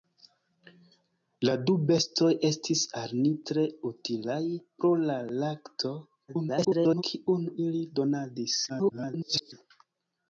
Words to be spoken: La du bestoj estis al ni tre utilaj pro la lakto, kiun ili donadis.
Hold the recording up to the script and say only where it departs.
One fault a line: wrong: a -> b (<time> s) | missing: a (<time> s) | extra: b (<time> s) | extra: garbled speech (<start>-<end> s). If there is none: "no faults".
extra: garbled speech (6.3-7.0 s)
extra: garbled speech (8.7-9.5 s)